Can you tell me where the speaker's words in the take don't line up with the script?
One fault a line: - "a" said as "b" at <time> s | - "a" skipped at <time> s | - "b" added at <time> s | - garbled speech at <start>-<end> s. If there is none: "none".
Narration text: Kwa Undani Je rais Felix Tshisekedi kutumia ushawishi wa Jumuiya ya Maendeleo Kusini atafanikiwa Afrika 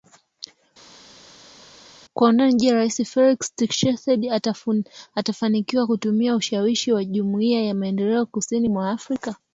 - "atafanikiwa" added at 5.1 s
- "atafanikiwa" said as "mwa" at 8.7 s